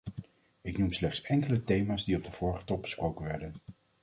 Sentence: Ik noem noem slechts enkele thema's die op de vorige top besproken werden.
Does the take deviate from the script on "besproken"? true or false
false